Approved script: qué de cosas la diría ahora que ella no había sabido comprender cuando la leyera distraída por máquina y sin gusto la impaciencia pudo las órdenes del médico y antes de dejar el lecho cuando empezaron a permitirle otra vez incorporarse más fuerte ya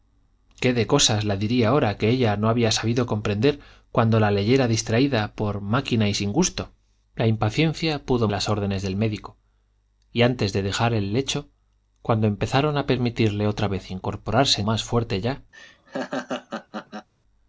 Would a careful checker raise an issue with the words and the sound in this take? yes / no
yes